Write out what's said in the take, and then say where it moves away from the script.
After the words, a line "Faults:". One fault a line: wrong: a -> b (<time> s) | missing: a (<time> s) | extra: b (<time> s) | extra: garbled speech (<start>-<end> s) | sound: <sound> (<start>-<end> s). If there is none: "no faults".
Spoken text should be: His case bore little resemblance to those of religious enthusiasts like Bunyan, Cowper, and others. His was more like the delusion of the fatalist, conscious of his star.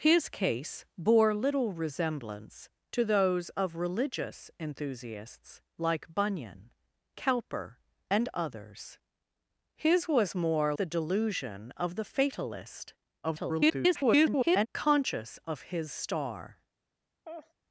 His case bore little resemblance to those of religious enthusiasts like Bunyan, Cowper, and others. His was more the delusion of the fatalist, [garbled] conscious of his star.
Faults:
missing: like (10.7 s)
extra: garbled speech (13.2-14.7 s)
sound: laugh (17.2-17.5 s)